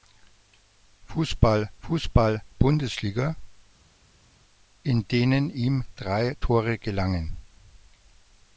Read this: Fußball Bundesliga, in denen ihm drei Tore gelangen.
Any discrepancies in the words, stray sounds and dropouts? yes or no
yes